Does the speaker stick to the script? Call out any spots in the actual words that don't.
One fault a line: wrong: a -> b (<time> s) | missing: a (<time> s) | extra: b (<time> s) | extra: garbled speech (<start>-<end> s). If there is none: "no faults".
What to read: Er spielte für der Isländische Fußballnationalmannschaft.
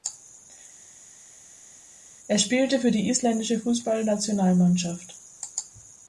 wrong: der -> die (2.9 s)